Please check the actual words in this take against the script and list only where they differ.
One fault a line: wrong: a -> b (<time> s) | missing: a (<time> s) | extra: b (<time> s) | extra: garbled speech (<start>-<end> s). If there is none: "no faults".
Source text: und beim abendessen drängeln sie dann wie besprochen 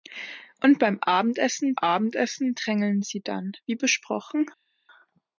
extra: abendessen (1.8 s)